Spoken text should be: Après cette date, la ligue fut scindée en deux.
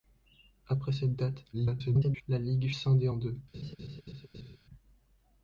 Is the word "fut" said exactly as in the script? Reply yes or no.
no